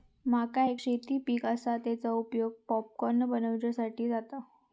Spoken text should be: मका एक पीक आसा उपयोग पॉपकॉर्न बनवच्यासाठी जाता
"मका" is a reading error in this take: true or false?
false